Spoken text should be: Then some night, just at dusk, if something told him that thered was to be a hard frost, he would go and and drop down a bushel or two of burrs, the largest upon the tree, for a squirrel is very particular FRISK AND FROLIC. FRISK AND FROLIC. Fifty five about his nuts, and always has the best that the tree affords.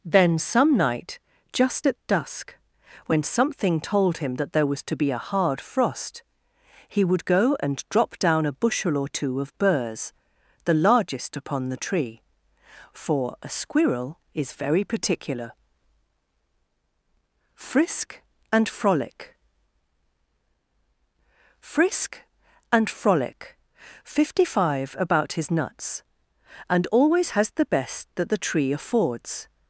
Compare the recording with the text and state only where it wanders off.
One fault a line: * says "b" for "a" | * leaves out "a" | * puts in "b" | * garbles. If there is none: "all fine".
* says "when" for "if"
* says "there" for "thered"
* leaves out "and"